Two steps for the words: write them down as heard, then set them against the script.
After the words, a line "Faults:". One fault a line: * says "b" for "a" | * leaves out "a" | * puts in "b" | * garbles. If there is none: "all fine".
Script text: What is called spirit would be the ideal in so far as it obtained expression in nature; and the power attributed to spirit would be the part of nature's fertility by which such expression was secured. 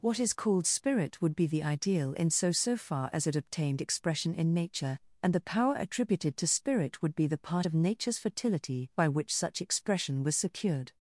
What is called spirit would be the ideal in so so far as it obtained expression in nature; and the power attributed to spirit would be the part of nature's fertility by which such expression was secured.
Faults:
* puts in "so"